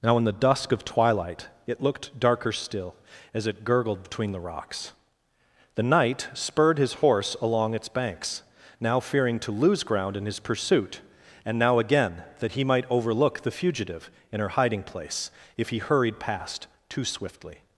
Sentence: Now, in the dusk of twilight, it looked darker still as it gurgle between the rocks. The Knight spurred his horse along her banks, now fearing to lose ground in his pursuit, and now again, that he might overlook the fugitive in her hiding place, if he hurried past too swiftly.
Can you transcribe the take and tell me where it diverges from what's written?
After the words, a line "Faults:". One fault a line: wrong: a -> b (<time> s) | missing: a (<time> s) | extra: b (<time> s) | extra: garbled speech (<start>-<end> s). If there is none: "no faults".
Now, in the dusk of twilight, it looked darker still as it gurgled between the rocks. The Knight spurred his horse along its banks, now fearing to lose ground in his pursuit, and now again, that he might overlook the fugitive in her hiding place, if he hurried past too swiftly.
Faults:
wrong: gurgle -> gurgled (3.6 s)
wrong: her -> its (7.7 s)